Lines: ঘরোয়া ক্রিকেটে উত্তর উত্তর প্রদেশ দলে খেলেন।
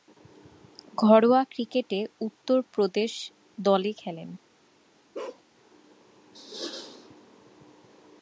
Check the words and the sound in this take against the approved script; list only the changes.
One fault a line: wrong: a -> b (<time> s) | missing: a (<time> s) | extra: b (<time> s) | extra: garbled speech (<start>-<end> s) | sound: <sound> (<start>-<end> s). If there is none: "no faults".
missing: উত্তর (2.6 s)
sound: bark (5.1-5.4 s)